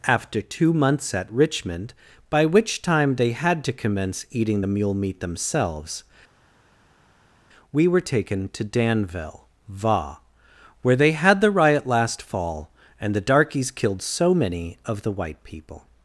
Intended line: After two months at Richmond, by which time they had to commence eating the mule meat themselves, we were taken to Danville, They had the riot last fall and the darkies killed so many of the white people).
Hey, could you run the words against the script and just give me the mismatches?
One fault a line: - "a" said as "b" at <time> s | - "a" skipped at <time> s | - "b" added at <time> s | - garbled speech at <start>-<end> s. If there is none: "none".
- "Va where" added at 9.7 s